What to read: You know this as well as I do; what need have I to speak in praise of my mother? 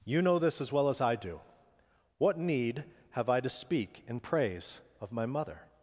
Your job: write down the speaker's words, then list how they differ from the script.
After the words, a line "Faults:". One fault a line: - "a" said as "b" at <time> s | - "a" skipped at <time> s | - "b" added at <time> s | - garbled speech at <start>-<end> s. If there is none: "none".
You know this as well as I do; what need have I to speak in praise of my mother?
Faults:
none